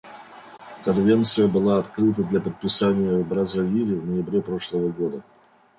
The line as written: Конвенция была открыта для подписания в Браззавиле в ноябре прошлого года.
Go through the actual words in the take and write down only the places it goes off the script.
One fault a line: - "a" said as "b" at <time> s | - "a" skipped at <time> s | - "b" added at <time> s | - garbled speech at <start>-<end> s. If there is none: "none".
none